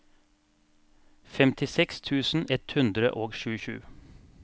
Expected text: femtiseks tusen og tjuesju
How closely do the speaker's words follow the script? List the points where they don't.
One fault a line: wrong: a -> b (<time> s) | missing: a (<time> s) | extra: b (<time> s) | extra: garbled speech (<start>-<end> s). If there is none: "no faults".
extra: ett hundre (2.6 s)